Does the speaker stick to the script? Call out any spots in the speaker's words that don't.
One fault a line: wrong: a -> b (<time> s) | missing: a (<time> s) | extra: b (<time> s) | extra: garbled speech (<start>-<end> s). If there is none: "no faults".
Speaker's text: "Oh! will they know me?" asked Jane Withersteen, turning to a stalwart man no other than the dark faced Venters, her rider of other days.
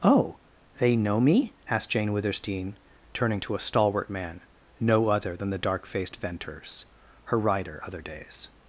missing: will (0.4 s)
missing: of (7.8 s)